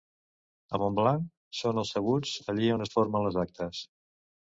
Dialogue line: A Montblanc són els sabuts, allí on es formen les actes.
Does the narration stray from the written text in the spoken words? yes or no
no